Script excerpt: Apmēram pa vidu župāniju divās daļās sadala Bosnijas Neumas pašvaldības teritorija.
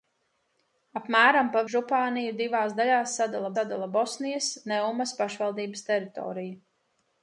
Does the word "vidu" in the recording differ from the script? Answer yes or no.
yes